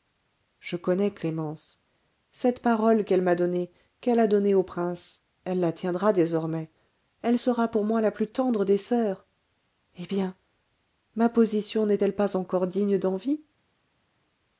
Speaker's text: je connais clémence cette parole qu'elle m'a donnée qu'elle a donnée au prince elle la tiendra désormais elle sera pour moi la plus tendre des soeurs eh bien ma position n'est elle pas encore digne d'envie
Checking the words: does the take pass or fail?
pass